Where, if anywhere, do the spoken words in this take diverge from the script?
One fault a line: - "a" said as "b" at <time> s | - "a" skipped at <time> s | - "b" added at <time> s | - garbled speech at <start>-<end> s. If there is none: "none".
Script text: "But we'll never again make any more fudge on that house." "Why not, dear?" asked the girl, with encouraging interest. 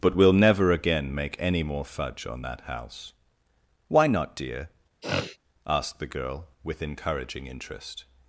none